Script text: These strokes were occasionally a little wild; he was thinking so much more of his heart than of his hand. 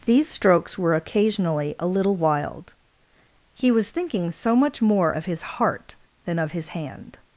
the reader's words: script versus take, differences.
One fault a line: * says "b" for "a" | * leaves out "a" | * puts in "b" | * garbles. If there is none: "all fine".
all fine